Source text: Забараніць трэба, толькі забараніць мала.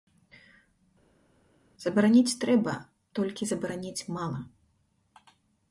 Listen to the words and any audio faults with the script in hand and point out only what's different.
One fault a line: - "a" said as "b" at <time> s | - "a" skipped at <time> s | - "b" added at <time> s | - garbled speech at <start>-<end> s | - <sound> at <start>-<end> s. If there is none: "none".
none